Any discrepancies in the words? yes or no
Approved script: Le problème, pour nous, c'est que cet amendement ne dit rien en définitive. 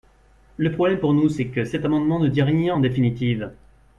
no